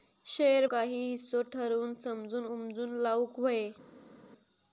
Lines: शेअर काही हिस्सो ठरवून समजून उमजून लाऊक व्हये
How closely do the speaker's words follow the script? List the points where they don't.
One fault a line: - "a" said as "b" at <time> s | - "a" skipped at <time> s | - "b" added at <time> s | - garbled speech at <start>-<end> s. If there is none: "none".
none